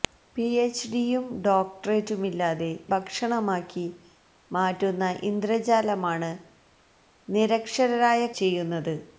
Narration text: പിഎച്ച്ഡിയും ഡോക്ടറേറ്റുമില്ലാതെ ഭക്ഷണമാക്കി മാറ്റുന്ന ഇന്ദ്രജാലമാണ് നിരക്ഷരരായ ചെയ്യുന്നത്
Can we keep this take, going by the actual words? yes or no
yes